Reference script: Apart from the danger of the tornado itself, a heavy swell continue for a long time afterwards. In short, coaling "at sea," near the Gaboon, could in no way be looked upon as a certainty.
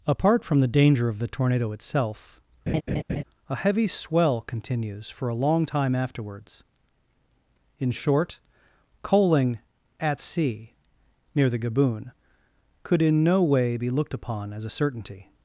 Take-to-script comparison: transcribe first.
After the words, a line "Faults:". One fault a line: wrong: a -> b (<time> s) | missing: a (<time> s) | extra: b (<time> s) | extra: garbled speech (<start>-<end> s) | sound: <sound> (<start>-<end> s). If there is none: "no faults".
Apart from the danger of the tornado itself, a heavy swell continues for a long time afterwards. In short, coaling "at sea," near the Gaboon, could in no way be looked upon as a certainty.
Faults:
sound: laugh (2.7-3.2 s)
wrong: continue -> continues (4.4 s)